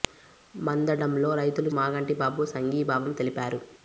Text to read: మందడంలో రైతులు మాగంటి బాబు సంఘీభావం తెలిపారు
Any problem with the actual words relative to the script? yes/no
no